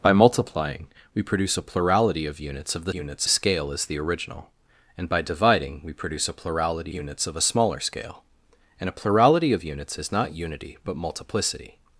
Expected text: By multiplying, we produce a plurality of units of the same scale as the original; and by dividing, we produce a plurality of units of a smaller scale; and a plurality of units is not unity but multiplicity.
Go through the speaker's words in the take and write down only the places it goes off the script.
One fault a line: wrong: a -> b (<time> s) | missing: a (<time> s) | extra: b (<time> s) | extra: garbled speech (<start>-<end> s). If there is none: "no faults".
wrong: same -> units (2.9 s)
missing: of (6.9 s)